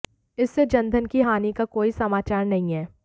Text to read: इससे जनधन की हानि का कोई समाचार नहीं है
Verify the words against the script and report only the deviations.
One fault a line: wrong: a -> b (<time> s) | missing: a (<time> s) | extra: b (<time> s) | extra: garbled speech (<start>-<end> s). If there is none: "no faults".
no faults